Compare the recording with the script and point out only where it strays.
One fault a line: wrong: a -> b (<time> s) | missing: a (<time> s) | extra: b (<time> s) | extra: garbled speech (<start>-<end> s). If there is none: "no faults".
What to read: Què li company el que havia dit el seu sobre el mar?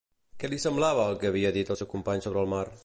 wrong: company -> semblava (0.6 s)
extra: company (2.0 s)